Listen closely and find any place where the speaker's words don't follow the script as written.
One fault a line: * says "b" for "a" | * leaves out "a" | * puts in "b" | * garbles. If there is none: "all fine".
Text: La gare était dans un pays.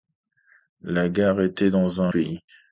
all fine